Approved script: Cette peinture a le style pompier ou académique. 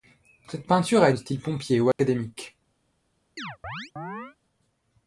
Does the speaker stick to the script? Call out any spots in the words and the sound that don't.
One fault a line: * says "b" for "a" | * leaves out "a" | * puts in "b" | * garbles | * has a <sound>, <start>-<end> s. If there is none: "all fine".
* has a dropout, 1.9-2.0 s
* has a chirp, 3.4-4.4 s